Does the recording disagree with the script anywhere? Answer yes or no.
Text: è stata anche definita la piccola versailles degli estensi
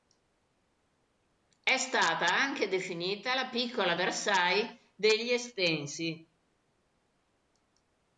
no